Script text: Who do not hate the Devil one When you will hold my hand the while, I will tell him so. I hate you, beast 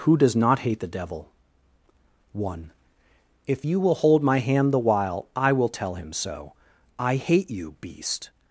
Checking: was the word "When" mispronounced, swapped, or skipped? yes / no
yes